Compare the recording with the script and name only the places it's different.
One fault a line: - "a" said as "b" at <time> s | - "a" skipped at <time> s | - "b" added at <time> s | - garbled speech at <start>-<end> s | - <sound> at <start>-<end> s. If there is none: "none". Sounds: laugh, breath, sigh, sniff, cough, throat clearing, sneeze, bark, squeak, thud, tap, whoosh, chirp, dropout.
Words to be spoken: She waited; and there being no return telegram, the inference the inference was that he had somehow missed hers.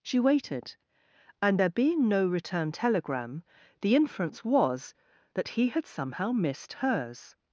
- "the inference" skipped at 4.4 s